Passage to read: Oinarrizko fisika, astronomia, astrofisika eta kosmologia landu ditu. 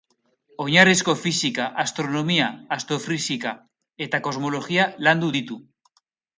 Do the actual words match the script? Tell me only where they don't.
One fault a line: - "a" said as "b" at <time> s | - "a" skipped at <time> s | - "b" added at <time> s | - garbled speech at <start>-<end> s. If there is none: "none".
none